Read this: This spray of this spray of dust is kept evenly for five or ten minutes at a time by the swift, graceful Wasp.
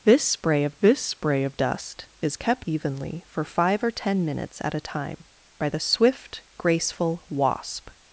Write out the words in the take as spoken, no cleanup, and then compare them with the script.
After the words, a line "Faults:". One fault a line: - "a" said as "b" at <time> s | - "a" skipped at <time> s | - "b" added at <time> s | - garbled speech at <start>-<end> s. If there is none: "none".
This spray of this spray of dust is kept evenly for five or ten minutes at a time by the swift, graceful Wasp.
Faults:
none